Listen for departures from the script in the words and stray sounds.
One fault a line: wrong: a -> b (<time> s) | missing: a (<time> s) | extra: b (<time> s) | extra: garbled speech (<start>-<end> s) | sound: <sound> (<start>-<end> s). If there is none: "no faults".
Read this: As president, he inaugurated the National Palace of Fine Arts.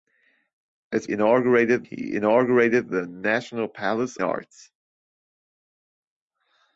wrong: president -> inaugurated (1.1 s)
missing: of Fine (4.2 s)